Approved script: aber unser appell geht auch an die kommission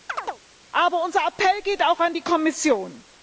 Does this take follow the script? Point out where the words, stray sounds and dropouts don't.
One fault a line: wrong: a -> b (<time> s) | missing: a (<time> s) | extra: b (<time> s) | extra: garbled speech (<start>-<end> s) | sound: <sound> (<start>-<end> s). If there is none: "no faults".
sound: chirp (0.1-0.4 s)